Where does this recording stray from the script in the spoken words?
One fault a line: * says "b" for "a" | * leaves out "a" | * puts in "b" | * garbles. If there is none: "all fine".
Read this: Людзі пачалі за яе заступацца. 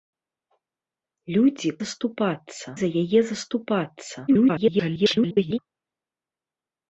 * says "заступацца" for "пачалі"
* garbles